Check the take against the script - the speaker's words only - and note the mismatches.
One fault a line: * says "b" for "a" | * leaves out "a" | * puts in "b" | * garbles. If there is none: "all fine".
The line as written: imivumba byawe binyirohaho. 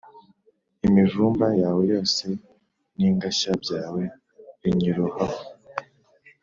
* puts in "yawe yose n'ingashya"